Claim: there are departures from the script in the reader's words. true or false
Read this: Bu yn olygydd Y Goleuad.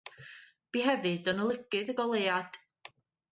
true